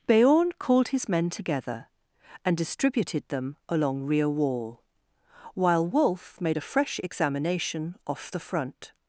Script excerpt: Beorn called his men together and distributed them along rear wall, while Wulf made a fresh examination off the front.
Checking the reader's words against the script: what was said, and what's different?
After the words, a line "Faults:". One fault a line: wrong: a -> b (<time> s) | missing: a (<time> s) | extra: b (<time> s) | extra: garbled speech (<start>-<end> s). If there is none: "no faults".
Beorn called his men together and distributed them along rear wall, while Wulf made a fresh examination off the front.
Faults:
no faults